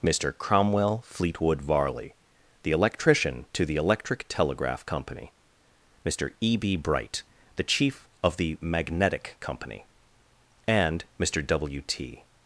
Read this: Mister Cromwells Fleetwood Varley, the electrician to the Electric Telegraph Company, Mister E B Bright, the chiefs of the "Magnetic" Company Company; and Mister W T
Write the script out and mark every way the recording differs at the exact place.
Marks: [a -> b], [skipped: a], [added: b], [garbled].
Mister [Cromwells -> Cromwell] Fleetwood Varley, the electrician to the Electric Telegraph Company, Mister E B Bright, the [chiefs -> chief] of the "Magnetic" Company [skipped: Company;] and Mister W T